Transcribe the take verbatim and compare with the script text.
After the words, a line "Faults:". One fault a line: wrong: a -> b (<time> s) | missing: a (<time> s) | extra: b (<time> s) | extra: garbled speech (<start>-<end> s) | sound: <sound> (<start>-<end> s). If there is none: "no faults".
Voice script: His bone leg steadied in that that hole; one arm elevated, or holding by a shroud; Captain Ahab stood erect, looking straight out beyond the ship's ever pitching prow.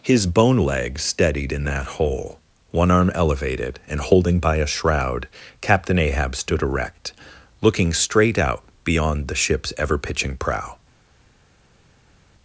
His bone leg steadied in that hole; one arm elevated, and holding by a shroud; Captain Ahab stood erect, looking straight out beyond the ship's ever pitching prow.
Faults:
missing: that (2.0 s)
wrong: or -> and (3.9 s)